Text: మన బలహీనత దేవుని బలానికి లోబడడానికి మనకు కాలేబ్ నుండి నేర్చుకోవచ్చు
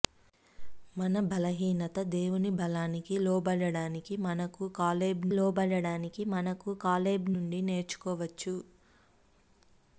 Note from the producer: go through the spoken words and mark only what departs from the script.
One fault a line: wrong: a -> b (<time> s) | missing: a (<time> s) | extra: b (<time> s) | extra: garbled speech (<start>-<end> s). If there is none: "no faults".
extra: లోబడడానికి మనకు కాలేబ్ (5.3 s)